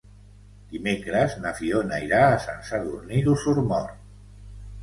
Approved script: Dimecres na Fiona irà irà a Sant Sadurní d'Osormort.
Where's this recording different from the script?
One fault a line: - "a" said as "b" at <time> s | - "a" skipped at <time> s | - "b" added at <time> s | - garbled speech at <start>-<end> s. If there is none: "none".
- "irà" skipped at 2.2 s